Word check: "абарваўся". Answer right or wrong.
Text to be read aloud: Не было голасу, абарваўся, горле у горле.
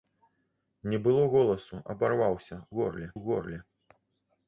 right